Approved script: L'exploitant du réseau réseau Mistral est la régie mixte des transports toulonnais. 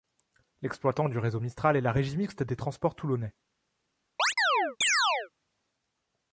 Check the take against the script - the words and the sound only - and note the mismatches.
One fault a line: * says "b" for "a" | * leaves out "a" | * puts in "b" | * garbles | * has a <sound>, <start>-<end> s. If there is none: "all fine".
* leaves out "réseau"
* has a chirp, 4.2-5.3 s